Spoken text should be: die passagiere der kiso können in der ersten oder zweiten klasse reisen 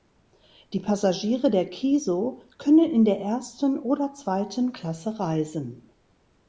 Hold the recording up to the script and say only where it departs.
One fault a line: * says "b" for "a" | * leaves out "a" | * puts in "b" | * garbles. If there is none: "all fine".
all fine